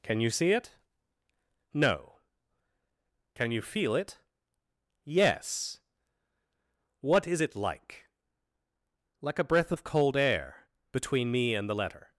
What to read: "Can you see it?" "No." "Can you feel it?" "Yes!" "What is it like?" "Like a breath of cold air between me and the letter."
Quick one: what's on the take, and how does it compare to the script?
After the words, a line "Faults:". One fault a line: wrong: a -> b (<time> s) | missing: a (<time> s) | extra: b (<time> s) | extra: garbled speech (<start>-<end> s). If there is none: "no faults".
"Can you see it?" "No." "Can you feel it?" "Yes!" "What is it like?" "Like a breath of cold air between me and the letter."
Faults:
no faults